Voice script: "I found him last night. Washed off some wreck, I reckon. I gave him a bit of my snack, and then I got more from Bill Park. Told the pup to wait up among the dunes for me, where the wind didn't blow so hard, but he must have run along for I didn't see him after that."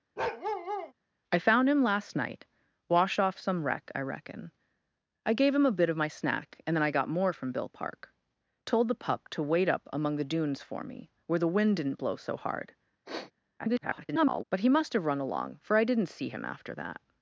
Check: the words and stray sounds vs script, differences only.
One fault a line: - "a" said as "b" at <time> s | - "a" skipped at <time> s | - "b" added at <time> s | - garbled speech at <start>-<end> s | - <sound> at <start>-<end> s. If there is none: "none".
- bark at 0.2-0.9 s
- sniff at 13.0-13.3 s
- garbled speech at 13.6-14.4 s